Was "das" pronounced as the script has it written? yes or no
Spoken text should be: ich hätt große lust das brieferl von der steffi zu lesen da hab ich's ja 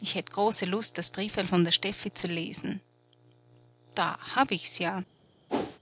yes